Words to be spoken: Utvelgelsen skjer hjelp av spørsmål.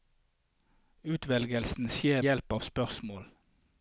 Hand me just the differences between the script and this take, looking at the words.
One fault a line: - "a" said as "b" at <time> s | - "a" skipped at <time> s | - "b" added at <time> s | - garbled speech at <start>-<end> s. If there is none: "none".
none